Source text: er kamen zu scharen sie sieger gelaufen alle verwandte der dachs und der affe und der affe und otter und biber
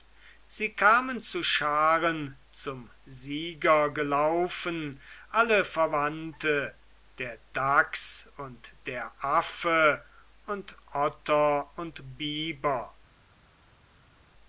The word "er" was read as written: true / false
false